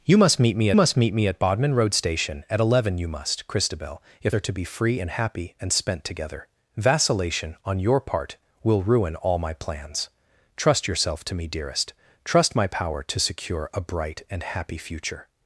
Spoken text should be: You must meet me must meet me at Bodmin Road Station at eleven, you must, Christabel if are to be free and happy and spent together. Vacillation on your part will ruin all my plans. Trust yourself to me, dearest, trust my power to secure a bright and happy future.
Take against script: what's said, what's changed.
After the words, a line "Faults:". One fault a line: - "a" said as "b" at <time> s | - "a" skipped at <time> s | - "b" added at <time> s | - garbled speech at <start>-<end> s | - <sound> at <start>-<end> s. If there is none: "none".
You must meet me must meet me at Bodmin Road Station at eleven, you must, Christabel if are to be free and happy and spent together. Vacillation on your part will ruin all my plans. Trust yourself to me, dearest, trust my power to secure a bright and happy future.
Faults:
none